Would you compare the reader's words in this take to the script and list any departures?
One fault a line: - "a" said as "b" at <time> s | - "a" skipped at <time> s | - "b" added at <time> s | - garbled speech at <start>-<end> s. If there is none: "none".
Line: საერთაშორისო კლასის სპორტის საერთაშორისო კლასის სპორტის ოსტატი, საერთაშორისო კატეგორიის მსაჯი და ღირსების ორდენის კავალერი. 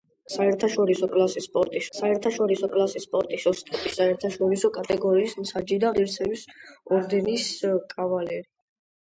none